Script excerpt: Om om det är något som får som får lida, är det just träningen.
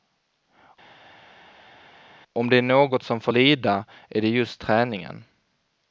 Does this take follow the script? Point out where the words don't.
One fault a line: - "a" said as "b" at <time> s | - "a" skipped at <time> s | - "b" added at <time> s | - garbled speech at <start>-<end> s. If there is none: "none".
- "om" skipped at 2.5 s
- "som får" skipped at 3.3 s